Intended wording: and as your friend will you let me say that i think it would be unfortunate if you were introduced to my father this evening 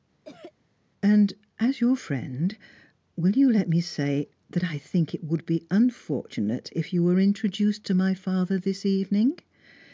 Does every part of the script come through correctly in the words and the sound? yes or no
no